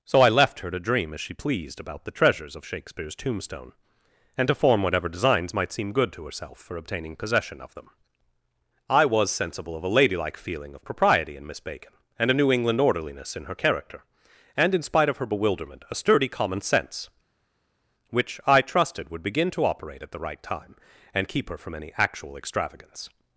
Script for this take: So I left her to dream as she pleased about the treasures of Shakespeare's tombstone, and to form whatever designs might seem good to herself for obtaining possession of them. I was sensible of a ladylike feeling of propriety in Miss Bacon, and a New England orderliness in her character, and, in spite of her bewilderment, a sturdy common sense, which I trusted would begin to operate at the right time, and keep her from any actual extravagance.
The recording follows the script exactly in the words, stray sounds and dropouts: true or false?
true